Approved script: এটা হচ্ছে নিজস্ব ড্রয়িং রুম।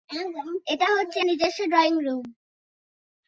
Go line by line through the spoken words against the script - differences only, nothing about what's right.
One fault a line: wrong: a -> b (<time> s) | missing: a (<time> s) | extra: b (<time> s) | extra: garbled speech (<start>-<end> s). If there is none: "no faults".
no faults